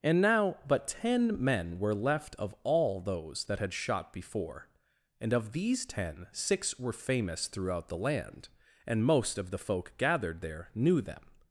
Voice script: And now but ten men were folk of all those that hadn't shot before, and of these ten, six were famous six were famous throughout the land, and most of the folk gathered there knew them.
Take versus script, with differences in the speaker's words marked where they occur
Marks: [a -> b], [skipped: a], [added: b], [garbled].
And now but ten men were [folk -> left] of all those that [hadn't -> had] shot before, and of these ten, six were famous [skipped: six were famous] throughout the land, and most of the folk gathered there knew them.